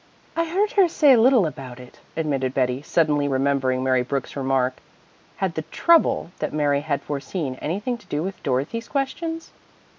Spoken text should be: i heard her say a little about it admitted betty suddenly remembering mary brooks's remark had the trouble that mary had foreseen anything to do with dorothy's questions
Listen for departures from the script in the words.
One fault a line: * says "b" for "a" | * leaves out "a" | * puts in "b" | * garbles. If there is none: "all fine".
all fine